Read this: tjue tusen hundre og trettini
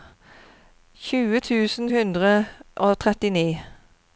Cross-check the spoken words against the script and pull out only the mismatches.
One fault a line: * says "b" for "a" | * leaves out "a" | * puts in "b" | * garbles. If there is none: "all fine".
all fine